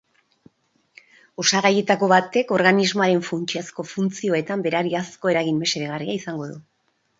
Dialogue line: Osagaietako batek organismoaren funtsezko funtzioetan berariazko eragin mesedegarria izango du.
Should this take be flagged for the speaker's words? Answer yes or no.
no